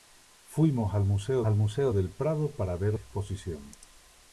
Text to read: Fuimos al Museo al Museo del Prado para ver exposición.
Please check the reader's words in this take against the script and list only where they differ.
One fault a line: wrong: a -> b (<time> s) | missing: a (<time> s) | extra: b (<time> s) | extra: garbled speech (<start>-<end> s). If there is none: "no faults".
no faults